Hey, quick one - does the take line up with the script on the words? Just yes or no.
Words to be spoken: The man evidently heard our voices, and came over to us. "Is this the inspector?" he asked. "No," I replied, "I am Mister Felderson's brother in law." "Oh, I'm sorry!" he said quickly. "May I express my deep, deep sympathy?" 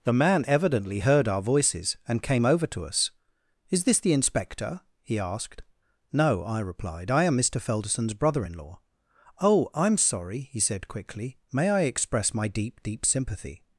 yes